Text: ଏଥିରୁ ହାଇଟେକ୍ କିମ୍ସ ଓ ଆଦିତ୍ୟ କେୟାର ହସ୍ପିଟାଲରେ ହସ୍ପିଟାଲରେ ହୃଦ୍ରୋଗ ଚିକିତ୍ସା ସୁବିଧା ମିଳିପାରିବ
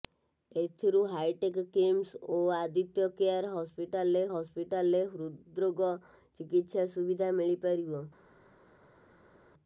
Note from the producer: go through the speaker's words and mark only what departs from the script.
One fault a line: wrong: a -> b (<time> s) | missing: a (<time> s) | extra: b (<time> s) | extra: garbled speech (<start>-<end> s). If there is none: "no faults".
no faults